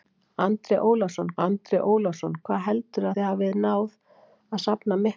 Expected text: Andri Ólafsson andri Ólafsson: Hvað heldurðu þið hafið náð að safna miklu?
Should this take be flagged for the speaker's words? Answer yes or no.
no